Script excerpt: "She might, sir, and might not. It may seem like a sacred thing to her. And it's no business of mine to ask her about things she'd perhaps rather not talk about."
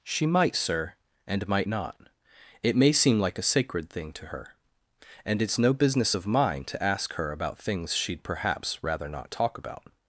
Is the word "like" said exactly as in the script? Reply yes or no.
yes